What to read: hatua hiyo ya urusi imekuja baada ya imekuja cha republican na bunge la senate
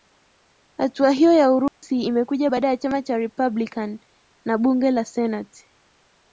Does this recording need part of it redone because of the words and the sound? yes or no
yes